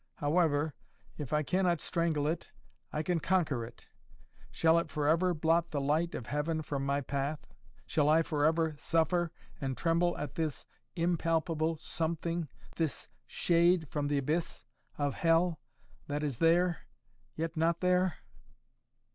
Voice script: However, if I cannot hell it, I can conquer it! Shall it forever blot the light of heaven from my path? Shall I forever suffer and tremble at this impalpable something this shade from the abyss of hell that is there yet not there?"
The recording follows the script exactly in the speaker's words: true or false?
false